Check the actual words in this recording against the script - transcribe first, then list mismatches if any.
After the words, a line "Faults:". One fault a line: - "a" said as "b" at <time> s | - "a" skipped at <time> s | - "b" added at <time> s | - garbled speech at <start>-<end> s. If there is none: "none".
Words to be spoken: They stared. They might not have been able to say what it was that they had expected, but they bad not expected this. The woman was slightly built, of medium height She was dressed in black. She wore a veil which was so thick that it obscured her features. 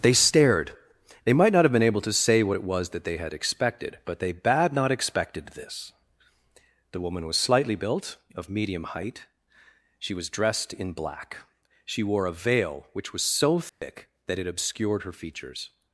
They stared. They might not have been able to say what it was that they had expected, but they bad not expected this. The woman was slightly built, of medium height She was dressed in black. She wore a veil which was so thick that it obscured her features.
Faults:
none